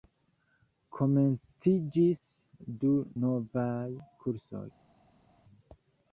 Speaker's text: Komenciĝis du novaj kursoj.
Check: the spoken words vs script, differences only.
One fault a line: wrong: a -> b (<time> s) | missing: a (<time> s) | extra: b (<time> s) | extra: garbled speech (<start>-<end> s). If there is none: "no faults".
no faults